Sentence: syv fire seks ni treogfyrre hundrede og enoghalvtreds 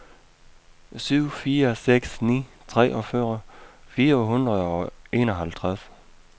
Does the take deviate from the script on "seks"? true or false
false